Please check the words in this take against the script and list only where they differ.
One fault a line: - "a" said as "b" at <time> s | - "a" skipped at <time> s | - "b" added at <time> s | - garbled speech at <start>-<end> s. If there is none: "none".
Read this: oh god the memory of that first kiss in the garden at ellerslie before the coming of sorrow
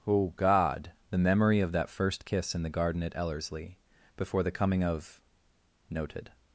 - "sorrow" said as "noted" at 5.9 s